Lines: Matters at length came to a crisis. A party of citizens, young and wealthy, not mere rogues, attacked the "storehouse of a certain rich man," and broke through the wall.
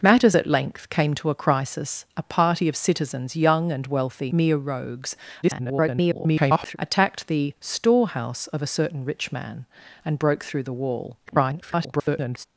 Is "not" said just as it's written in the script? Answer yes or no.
no